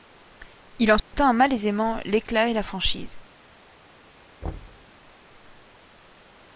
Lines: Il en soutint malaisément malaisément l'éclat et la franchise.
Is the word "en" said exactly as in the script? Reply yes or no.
yes